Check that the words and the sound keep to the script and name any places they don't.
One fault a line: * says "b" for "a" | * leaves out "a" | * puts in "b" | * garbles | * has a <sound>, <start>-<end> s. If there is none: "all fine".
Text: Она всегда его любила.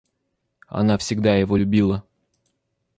all fine